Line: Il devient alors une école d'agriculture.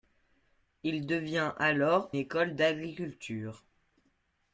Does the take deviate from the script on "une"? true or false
true